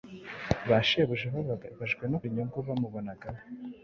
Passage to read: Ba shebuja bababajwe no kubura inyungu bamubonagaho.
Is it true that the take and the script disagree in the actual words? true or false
true